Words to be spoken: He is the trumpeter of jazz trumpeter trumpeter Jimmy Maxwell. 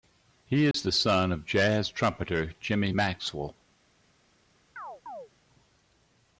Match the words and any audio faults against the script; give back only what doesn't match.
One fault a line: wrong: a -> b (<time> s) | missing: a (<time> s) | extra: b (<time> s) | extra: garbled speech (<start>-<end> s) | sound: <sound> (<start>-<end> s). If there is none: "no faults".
sound: dropout (0.7-0.7 s)
wrong: trumpeter -> son (0.9 s)
missing: trumpeter (2.5 s)
sound: chirp (4.8-5.3 s)